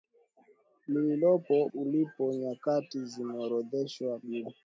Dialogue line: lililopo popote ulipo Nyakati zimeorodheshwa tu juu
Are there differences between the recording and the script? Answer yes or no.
yes